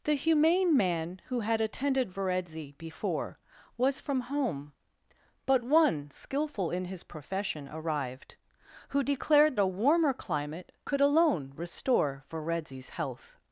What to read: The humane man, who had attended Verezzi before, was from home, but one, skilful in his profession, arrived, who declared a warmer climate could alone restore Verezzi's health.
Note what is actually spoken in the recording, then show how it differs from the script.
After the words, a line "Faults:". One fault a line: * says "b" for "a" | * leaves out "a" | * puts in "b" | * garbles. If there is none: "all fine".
The humane man, who had attended Verezzi before, was from home, but one, skilful in his profession, arrived, who declared a warmer climate could alone restore Verezzi's health.
Faults:
all fine